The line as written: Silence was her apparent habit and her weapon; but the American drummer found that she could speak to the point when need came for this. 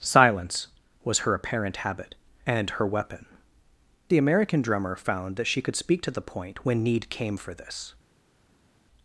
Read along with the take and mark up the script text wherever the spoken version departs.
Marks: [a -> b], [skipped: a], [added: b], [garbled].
Silence was her apparent habit and her weapon; [skipped: but] the American drummer found that she could speak to the point when need came for this.